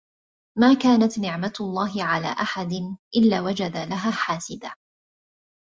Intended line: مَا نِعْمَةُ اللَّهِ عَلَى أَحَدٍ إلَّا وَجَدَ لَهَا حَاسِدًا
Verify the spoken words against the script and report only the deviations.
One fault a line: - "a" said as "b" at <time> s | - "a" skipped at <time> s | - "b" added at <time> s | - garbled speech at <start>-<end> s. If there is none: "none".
- "كَانَتْ" added at 0.7 s